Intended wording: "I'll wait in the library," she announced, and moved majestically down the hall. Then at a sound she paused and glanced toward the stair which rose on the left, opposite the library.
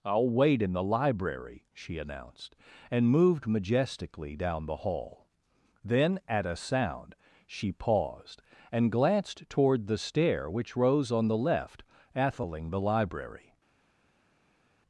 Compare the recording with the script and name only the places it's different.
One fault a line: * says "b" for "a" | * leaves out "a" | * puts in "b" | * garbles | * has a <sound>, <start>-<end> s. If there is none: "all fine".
* says "atheling" for "opposite"